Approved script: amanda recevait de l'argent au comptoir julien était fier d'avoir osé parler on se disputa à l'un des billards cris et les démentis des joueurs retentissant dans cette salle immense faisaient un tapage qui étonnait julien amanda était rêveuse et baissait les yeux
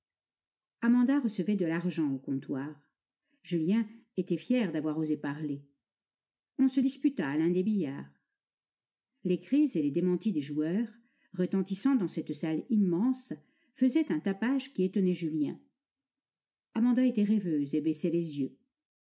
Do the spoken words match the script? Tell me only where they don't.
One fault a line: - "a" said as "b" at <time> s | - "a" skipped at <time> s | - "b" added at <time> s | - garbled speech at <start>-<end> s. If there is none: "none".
- "les" added at 9.2 s